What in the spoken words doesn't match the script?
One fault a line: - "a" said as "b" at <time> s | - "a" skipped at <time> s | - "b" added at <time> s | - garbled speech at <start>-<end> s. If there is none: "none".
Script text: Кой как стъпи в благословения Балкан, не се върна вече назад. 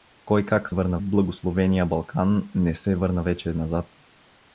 - "стъпи" said as "върна" at 0.7 s